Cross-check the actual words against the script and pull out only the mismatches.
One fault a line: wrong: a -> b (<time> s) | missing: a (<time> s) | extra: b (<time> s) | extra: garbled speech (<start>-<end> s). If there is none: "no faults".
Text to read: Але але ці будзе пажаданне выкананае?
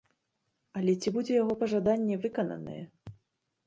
missing: але (0.9 s)
extra: яго (1.4 s)